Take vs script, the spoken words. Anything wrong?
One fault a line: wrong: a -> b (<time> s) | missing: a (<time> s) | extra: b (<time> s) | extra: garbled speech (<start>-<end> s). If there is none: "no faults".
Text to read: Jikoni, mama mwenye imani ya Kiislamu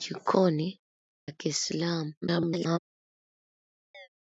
missing: mama mwenye imani (0.8 s)
extra: garbled speech (2.2-2.8 s)